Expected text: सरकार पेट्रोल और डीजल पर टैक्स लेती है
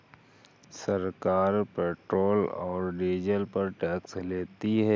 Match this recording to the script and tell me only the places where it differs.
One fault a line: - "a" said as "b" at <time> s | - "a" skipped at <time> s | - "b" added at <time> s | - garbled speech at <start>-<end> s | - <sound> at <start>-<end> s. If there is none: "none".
none